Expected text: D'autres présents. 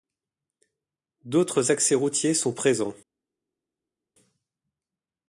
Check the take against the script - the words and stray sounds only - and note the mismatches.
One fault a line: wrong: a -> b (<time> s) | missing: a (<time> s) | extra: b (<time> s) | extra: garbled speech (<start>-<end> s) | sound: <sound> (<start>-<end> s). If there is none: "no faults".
extra: accès routiers sont (1.7 s)